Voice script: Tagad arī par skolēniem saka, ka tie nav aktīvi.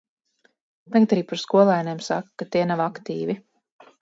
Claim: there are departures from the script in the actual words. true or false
false